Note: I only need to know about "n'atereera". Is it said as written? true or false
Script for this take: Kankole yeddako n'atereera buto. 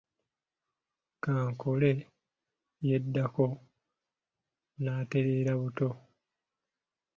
true